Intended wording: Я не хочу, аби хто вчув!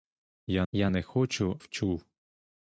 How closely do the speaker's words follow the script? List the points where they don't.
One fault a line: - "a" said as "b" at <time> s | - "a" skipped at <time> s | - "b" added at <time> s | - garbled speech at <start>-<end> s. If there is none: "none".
- "я" added at 0.7 s
- "аби хто" skipped at 1.6 s